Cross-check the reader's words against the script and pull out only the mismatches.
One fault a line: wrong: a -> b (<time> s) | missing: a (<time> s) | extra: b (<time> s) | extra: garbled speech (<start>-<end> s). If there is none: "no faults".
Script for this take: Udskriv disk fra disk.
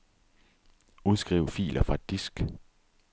wrong: disk -> filer (1.4 s)